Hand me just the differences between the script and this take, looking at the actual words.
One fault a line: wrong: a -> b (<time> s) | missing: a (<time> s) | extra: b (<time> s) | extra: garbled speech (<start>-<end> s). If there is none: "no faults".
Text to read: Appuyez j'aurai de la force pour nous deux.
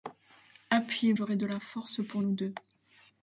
no faults